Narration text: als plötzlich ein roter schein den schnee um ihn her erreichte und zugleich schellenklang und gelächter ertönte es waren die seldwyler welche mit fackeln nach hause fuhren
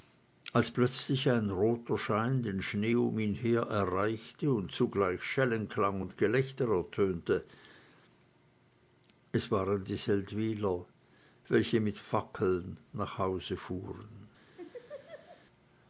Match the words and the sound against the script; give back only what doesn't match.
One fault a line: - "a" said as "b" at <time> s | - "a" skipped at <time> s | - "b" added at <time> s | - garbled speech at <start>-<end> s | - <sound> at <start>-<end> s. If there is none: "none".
- laugh at 14.6-15.5 s